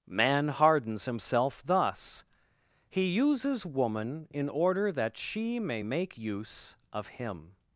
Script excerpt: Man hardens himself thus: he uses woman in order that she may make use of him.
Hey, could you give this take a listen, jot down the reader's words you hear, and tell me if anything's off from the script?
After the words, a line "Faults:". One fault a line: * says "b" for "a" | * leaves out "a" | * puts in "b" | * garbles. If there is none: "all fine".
Man hardens himself thus: he uses woman in order that she may make use of him.
Faults:
all fine